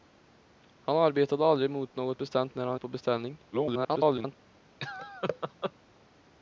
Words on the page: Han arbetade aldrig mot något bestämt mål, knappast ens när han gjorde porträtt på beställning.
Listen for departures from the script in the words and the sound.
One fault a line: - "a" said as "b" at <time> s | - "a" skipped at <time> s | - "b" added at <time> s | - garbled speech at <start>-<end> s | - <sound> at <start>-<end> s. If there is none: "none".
- "mål knappast ens" skipped at 2.5 s
- "gjorde porträtt" skipped at 2.8 s
- garbled speech at 3.5-4.4 s
- laugh at 4.8-5.7 s